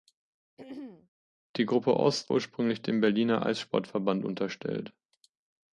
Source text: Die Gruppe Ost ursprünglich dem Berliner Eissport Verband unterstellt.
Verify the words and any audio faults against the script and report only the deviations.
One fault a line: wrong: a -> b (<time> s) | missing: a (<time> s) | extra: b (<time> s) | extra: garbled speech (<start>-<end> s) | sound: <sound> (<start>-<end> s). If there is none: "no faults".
sound: throat clearing (0.6-1.1 s)